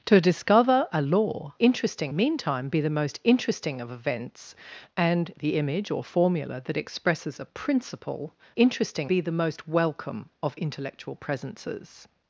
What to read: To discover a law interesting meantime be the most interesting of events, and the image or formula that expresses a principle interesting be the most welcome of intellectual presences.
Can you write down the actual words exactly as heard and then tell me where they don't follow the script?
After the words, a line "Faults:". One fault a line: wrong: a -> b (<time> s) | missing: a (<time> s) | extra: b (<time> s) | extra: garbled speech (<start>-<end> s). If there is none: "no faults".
To discover a law interesting meantime be the most interesting of events, and the image or formula that expresses a principle interesting be the most welcome of intellectual presences.
Faults:
no faults